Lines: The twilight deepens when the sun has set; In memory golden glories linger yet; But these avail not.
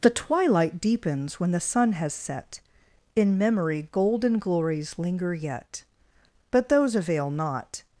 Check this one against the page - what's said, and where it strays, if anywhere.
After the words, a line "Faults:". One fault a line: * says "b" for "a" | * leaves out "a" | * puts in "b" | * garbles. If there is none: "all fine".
The twilight deepens when the sun has set; In memory golden glories linger yet; But those avail not.
Faults:
* says "those" for "these"